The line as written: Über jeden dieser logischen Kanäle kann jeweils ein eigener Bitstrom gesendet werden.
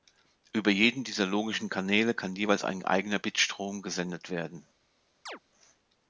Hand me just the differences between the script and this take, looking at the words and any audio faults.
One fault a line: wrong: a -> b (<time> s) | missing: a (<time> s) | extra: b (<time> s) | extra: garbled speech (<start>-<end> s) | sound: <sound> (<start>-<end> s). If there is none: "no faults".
sound: chirp (5.3-5.4 s)